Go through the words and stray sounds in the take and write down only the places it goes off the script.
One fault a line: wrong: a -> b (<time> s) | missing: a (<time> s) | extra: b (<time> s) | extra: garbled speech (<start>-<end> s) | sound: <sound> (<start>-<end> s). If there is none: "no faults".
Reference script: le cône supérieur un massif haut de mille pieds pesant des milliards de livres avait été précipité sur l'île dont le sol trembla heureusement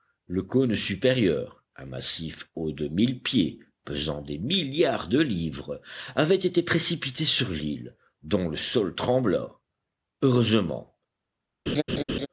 sound: laugh (11.7-12.3 s)